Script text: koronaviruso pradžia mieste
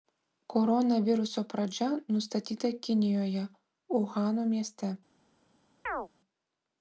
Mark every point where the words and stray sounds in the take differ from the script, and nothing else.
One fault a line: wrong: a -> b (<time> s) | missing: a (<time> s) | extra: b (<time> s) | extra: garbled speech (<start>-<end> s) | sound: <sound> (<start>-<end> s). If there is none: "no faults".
extra: nustatyta kinijoje uhano (2.2 s)
sound: chirp (5.9-6.1 s)